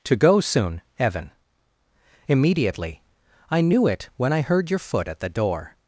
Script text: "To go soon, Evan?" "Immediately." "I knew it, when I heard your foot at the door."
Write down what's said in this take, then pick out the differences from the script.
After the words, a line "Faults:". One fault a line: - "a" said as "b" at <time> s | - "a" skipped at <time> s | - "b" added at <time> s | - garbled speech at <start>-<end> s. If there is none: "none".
"To go soon, Evan?" "Immediately." "I knew it, when I heard your foot at the door."
Faults:
none